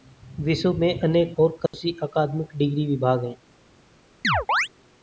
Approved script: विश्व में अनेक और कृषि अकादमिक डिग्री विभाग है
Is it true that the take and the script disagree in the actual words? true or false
false